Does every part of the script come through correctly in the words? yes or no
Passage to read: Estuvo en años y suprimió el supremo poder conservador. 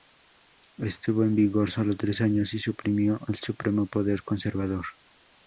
no